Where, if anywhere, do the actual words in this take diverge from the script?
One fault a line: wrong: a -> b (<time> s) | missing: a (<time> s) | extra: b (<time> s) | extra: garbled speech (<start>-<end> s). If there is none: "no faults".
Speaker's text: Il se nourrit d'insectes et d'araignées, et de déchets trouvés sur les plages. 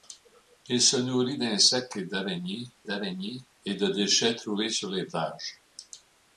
extra: d'araignées (2.8 s)